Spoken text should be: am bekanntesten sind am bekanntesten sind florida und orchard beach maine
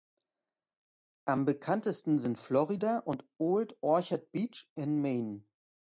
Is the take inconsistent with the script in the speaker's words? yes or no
yes